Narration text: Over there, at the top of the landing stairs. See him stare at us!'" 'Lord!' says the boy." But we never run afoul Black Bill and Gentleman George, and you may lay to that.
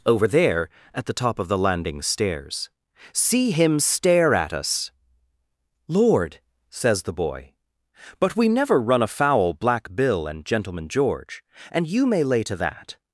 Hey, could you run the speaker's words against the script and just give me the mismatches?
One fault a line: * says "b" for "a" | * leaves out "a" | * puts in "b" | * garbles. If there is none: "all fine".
all fine